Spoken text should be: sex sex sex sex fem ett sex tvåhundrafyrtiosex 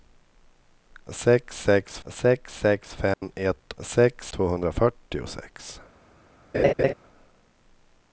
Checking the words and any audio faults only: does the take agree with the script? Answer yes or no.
no